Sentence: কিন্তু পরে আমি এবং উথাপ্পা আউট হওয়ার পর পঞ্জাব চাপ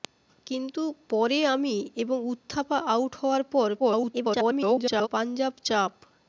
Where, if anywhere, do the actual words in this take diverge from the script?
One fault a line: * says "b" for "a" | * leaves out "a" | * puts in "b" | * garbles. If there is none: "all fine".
* garbles